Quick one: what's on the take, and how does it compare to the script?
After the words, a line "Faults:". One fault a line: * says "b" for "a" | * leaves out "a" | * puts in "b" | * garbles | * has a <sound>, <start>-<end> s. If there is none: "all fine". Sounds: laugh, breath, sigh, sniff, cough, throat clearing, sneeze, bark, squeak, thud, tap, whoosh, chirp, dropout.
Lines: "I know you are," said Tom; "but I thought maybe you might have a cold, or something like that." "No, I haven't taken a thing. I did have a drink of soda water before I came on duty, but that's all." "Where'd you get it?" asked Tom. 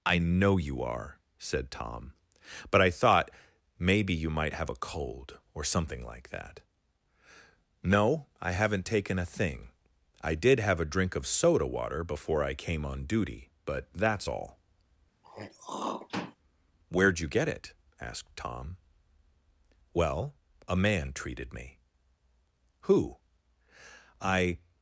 "I know you are," said Tom; "but I thought maybe you might have a cold, or something like that." "No, I haven't taken a thing. I did have a drink of soda water before I came on duty, but that's all." "Where'd you get it?" asked Tom. "Well, a man treated me." "Who?" "I
Faults:
* has a throat clearing, 15.2-16.4 s
* puts in "Well a man treated me Who I"